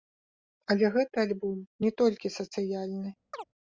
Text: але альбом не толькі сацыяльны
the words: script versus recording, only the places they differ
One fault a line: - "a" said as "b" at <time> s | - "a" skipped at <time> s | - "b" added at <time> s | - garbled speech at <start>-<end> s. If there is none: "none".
- "гэты" added at 0.9 s